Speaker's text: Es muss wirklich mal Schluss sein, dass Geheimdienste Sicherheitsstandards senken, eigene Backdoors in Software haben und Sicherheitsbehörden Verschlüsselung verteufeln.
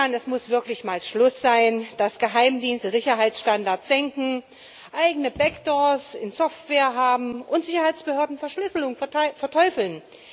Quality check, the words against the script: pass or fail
pass